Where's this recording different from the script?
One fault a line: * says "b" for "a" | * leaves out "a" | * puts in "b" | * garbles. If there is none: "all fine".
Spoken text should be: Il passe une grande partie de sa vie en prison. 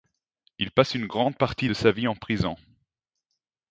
all fine